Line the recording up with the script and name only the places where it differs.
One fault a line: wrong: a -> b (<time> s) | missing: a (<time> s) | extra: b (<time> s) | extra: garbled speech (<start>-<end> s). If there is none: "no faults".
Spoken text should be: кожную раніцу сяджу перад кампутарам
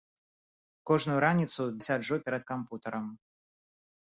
no faults